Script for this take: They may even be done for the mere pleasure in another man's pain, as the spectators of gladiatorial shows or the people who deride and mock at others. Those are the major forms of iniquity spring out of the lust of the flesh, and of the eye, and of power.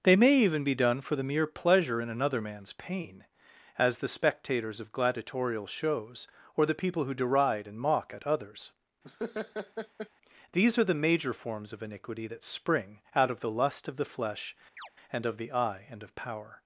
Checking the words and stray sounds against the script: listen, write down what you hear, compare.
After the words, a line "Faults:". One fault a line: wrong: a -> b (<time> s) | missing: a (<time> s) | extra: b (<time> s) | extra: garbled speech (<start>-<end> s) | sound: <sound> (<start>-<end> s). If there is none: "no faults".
They may even be done for the mere pleasure in another man's pain, as the spectators of gladiatorial shows or the people who deride and mock at others. These are the major forms of iniquity that spring out of the lust of the flesh, and of the eye, and of power.
Faults:
sound: laugh (9.0-10.1 s)
wrong: Those -> These (10.5 s)
extra: that (12.3 s)
sound: chirp (14.8-14.9 s)